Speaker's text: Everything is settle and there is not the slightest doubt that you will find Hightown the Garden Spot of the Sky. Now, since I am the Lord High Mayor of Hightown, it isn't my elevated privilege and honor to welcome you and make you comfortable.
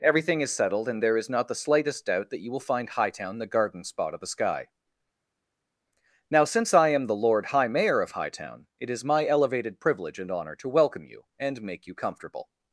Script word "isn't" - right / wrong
wrong